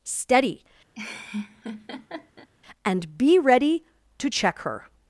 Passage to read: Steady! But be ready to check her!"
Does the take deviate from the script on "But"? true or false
true